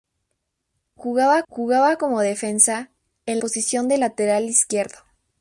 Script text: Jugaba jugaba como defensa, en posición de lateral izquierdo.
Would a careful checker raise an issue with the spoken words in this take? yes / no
no